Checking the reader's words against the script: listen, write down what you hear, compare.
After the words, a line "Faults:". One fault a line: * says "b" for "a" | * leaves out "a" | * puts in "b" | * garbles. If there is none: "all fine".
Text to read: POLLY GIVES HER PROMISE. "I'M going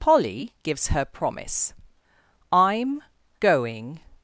POLLY GIVES HER PROMISE. "I'M going
Faults:
all fine